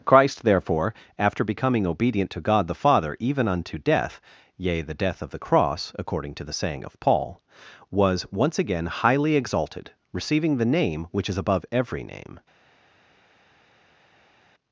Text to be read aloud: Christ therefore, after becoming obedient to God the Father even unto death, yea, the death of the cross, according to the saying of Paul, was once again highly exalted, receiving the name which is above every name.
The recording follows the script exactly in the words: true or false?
true